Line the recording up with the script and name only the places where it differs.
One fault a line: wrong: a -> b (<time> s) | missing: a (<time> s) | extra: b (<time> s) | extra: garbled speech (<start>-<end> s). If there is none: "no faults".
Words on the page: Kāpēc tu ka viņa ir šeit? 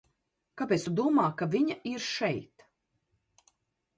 extra: domā (1.0 s)